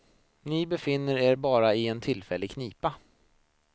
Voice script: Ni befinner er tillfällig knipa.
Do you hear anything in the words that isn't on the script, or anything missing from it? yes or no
yes